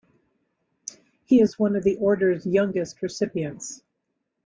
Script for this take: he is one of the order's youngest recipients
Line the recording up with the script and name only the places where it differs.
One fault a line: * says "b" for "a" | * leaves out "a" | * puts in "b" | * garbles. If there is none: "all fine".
all fine